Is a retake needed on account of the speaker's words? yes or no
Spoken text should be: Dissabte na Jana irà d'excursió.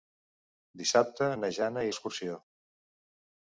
yes